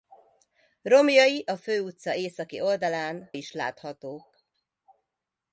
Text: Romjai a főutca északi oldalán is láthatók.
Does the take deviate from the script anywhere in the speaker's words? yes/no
no